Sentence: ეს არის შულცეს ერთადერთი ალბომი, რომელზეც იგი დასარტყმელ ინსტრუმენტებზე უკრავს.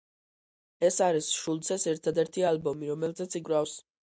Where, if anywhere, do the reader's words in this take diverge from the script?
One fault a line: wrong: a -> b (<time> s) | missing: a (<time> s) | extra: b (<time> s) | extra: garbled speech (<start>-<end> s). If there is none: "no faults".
missing: იგი დასარტყმელ ინსტრუმენტებზე (3.4 s)